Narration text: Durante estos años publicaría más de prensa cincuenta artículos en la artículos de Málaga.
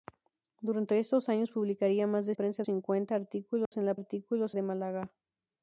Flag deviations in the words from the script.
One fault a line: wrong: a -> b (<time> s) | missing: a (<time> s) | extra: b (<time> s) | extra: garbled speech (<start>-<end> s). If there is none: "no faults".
no faults